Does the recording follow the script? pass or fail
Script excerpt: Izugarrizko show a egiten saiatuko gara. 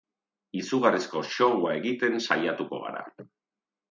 pass